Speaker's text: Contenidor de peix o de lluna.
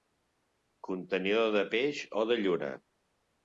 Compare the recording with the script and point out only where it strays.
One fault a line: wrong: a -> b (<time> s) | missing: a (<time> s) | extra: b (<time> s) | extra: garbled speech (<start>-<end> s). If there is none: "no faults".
no faults